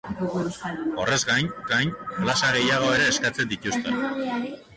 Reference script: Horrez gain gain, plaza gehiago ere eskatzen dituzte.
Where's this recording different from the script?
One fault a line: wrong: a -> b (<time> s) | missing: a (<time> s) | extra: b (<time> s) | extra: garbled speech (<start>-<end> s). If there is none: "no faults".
no faults